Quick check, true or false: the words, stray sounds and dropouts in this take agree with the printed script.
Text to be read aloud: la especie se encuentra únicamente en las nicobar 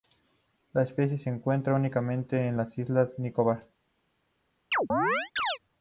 false